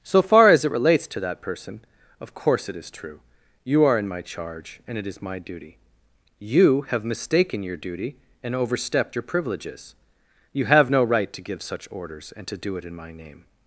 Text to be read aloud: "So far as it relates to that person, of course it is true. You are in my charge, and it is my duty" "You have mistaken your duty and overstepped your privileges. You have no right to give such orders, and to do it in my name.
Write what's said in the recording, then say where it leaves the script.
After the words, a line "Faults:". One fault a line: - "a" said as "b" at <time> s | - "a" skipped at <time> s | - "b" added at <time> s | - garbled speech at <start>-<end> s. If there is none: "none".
"So far as it relates to that person, of course it is true. You are in my charge, and it is my duty" "You have mistaken your duty and overstepped your privileges. You have no right to give such orders, and to do it in my name.
Faults:
none